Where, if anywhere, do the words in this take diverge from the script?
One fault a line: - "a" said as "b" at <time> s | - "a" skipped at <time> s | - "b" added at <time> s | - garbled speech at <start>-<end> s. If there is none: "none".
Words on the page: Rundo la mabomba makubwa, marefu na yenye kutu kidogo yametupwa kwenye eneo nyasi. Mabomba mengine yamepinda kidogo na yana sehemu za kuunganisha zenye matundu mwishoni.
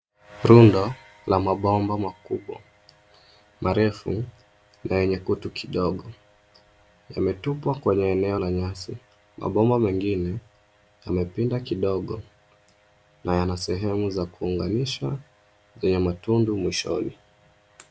- "la" added at 8.4 s